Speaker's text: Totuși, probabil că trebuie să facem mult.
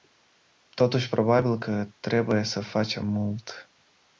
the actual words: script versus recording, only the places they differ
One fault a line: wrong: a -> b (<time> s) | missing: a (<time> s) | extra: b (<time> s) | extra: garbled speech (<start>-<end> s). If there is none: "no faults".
no faults